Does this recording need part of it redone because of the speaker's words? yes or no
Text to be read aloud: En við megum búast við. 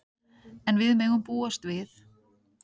no